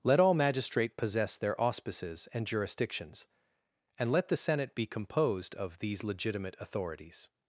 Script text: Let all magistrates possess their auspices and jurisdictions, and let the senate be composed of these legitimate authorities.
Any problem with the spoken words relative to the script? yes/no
yes